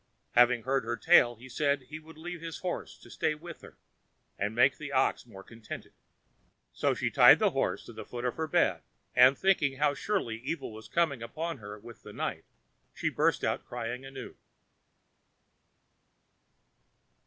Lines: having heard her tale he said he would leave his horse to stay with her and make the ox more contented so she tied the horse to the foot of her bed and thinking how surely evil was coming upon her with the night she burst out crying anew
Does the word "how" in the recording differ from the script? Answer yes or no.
no